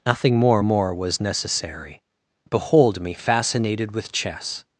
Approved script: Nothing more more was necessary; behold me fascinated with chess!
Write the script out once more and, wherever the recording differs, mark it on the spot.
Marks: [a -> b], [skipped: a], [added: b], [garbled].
Nothing more more was necessary; behold me fascinated with chess!